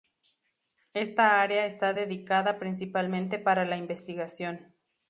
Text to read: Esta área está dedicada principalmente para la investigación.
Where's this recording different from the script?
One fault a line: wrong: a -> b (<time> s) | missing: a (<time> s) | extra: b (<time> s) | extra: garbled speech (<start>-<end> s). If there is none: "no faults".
no faults